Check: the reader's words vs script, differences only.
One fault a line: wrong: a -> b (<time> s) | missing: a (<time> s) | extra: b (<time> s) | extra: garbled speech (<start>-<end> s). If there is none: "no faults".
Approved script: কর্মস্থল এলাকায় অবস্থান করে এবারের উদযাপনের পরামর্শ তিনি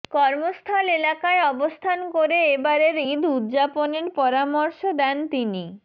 extra: ঈদ (3.1 s)
extra: দেন (5.0 s)